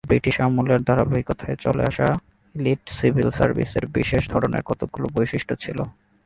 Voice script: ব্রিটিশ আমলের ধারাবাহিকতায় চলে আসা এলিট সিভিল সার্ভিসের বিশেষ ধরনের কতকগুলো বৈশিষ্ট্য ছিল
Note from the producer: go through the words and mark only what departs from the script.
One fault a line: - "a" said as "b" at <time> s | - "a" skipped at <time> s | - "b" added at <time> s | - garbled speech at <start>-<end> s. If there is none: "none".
none